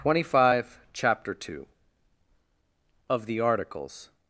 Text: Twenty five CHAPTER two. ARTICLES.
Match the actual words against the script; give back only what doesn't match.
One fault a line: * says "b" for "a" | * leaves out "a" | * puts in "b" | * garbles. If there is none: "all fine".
* puts in "OF THE"